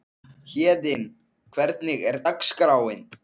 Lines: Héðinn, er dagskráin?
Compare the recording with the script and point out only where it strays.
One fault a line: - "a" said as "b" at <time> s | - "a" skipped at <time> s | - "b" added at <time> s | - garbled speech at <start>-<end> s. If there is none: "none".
- "hvernig" added at 1.6 s